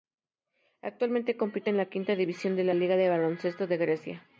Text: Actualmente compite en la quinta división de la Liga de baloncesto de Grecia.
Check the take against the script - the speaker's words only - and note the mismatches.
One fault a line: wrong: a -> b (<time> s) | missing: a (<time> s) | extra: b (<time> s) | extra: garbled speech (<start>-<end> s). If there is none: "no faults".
no faults